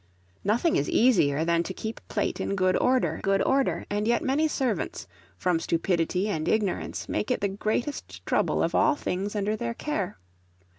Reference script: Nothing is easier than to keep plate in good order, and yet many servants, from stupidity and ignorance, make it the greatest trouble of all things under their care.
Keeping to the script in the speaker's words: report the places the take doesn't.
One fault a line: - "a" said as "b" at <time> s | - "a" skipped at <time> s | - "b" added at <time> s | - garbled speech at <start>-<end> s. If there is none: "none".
- "good order" added at 3.2 s